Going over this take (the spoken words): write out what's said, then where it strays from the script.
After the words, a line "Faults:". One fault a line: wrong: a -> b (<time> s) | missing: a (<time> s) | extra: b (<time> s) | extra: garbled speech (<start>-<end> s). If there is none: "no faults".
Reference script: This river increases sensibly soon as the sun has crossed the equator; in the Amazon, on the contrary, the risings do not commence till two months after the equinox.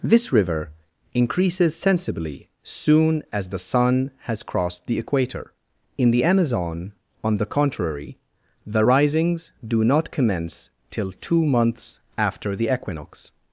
This river increases sensibly soon as the sun has crossed the equator; in the Amazon, on the contrary, the risings do not commence till two months after the equinox.
Faults:
no faults